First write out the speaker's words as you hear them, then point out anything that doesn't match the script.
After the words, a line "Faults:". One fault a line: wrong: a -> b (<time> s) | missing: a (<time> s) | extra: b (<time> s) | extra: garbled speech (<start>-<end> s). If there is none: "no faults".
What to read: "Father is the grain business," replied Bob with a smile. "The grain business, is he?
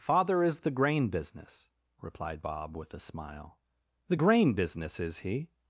"Father is the grain business," replied Bob with a smile. "The grain business, is he?
Faults:
no faults